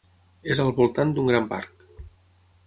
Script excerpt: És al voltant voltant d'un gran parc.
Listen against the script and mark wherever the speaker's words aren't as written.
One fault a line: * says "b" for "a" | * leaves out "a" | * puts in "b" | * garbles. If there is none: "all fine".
* leaves out "voltant"